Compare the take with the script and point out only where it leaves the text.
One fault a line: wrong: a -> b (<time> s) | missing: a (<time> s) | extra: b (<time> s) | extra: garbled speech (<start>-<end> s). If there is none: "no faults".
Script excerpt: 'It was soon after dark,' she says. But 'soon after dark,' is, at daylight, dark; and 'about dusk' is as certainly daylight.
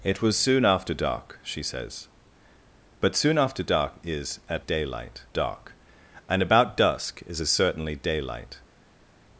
no faults